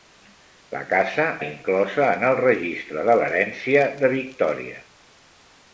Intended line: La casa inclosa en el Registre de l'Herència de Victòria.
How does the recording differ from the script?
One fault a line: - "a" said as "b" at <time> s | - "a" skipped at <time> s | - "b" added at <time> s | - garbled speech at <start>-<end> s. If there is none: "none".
none